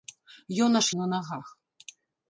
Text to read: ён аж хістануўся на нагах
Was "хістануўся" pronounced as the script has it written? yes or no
no